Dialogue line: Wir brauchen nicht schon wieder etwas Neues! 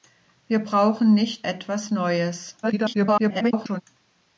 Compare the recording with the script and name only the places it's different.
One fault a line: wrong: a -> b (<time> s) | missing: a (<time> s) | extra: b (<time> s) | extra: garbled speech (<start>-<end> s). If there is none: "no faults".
missing: schon wieder (1.5 s)
extra: garbled speech (2.6-3.8 s)